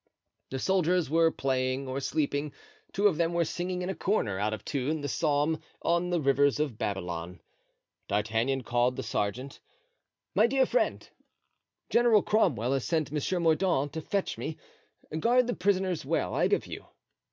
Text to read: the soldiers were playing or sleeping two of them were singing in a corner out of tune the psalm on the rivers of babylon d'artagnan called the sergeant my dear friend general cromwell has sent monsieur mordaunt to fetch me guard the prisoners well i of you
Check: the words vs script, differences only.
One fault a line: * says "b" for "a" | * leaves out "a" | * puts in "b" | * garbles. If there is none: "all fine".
all fine